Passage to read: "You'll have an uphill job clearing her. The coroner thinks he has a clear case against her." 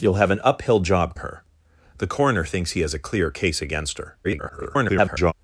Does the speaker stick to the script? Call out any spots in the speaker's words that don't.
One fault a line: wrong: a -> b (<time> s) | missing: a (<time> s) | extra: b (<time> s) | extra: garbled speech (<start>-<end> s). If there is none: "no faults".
missing: clearing (1.1 s)
extra: garbled speech (4.2-5.3 s)